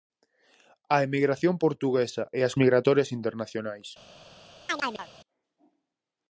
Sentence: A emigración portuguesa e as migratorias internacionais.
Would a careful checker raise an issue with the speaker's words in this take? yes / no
no